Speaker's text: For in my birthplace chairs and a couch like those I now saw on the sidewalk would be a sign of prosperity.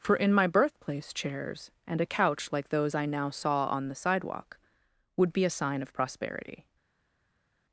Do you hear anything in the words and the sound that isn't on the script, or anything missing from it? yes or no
no